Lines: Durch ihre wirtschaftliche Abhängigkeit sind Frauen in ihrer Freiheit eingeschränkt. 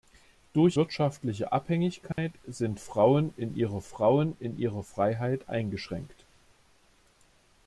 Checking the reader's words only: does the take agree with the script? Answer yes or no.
no